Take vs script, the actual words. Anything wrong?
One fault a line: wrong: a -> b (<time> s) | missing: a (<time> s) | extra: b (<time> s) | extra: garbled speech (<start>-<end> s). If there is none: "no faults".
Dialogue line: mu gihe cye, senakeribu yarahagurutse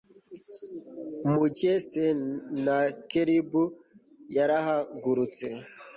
missing: gihe (1.4 s)